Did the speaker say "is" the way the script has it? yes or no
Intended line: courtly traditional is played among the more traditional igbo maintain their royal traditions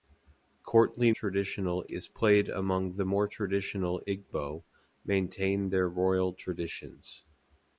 yes